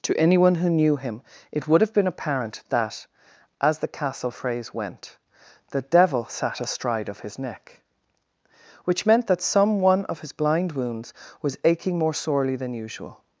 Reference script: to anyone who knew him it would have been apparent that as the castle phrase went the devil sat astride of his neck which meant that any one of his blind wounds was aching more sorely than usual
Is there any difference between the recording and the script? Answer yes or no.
yes